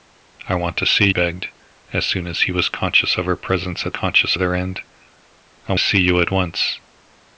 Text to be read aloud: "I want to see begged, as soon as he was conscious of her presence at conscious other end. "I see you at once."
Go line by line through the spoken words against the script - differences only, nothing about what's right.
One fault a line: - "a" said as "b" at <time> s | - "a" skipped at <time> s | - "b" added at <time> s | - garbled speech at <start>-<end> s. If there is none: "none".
none